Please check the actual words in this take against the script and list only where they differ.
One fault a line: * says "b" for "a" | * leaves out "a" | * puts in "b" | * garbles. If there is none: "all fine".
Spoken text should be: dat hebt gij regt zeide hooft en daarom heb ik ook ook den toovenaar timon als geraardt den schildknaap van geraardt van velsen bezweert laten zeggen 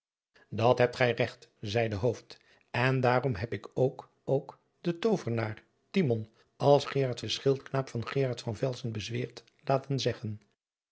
all fine